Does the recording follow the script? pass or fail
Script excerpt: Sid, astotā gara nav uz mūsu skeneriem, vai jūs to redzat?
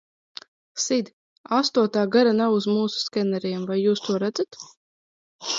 pass